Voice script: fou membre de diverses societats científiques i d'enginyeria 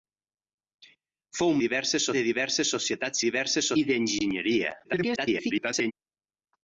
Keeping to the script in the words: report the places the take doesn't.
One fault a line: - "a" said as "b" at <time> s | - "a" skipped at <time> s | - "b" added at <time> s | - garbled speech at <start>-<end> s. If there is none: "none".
- "membre" said as "diverses" at 1.6 s
- "científiques" said as "diverses" at 3.3 s
- garbled speech at 4.8-5.9 s